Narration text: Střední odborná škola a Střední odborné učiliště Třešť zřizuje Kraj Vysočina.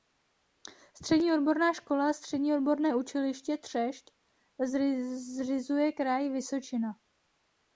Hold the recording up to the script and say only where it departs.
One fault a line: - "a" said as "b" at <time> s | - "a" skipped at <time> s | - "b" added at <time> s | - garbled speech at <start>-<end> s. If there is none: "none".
none